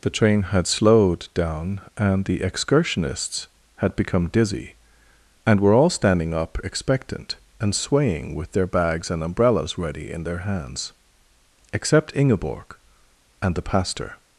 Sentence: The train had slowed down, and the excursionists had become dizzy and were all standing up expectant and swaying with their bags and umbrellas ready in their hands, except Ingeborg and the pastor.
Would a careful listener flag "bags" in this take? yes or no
no